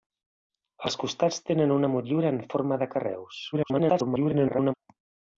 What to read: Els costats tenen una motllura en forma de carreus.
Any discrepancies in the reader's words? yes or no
yes